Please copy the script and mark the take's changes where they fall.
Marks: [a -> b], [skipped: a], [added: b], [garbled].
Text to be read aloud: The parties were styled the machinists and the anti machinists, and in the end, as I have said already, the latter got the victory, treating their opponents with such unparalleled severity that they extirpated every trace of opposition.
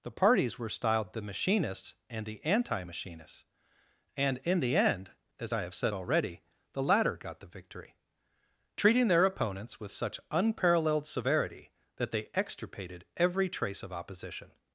The parties were styled the machinists and the anti machinists, and in the end, as I have said already, the latter got the victory, treating their opponents with such unparalleled severity that they extirpated every trace of opposition.